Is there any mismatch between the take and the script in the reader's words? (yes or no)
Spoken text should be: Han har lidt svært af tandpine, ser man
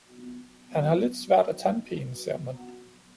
no